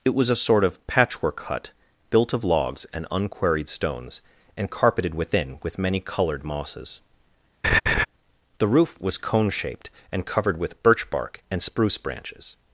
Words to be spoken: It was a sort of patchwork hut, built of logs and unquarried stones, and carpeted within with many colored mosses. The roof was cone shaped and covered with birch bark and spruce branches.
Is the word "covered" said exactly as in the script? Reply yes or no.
yes